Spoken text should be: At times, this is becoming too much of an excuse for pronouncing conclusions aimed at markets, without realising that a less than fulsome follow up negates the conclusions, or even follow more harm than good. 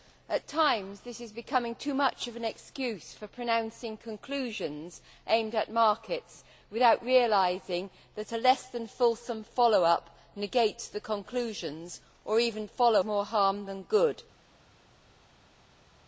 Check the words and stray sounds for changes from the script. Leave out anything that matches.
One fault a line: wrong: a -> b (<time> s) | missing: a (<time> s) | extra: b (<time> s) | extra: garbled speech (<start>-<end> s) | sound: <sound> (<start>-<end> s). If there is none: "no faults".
no faults